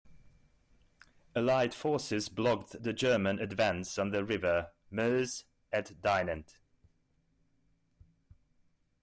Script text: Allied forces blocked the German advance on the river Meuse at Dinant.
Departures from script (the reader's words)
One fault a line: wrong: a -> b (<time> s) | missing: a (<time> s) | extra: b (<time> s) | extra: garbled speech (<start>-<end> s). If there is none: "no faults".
no faults